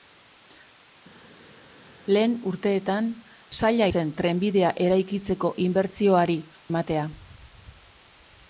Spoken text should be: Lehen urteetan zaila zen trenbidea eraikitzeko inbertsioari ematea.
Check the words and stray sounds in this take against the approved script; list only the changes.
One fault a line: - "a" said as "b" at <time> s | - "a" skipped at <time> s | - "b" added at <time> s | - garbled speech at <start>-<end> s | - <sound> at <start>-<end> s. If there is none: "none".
none